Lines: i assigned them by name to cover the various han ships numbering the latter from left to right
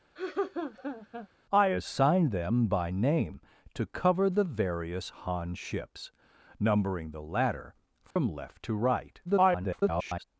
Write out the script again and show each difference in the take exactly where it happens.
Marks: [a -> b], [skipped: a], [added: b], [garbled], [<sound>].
[laugh] i assigned them by name to cover the various han ships numbering the latter from [dropout] left to right [garbled]